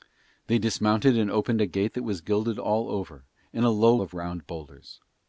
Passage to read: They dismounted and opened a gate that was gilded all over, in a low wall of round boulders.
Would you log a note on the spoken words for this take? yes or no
yes